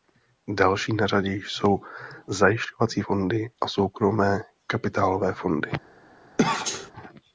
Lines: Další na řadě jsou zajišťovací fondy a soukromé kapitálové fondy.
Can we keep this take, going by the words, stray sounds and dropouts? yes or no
no